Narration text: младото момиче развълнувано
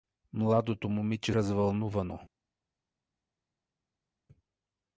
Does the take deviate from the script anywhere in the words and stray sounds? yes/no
no